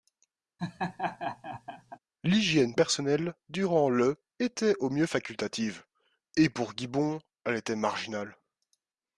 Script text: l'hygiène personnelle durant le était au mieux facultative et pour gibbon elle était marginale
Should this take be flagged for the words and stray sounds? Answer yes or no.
yes